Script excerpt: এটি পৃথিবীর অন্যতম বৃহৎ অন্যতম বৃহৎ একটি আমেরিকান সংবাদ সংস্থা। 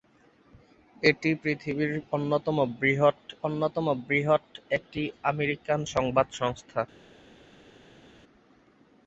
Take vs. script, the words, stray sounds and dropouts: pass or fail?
pass